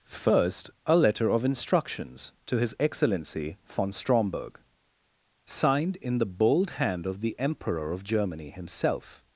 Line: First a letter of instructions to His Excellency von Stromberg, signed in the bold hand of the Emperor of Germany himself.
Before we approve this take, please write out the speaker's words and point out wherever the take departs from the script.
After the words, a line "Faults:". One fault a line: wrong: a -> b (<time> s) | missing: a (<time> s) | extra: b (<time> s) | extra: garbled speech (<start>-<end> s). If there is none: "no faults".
First a letter of instructions to His Excellency von Stromberg, signed in the bold hand of the Emperor of Germany himself.
Faults:
no faults